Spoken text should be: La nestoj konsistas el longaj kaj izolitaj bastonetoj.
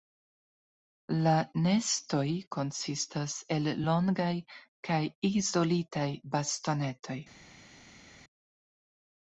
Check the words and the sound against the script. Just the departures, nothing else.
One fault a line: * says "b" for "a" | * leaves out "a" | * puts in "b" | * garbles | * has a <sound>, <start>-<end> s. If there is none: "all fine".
all fine